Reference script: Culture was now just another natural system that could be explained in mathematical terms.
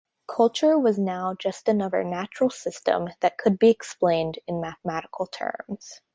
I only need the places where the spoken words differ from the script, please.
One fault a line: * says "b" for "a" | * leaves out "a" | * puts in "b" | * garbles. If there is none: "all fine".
all fine